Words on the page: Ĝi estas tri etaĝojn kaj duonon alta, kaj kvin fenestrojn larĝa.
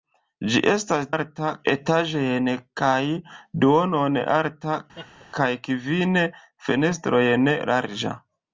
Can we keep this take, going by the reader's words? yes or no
no